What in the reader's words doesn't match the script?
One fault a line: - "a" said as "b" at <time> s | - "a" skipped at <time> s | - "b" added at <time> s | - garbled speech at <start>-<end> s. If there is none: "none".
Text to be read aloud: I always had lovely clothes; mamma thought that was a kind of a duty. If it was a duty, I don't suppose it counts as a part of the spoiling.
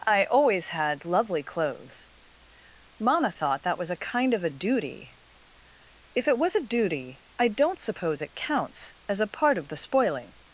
none